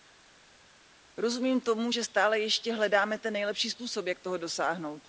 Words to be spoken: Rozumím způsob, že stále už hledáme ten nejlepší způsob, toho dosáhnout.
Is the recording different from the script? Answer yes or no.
yes